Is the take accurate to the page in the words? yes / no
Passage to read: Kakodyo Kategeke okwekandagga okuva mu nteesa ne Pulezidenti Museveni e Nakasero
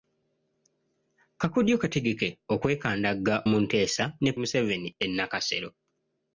no